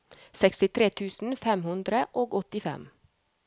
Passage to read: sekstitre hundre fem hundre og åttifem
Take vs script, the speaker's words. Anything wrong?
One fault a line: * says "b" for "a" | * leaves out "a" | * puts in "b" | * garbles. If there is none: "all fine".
* says "tusen" for "hundre"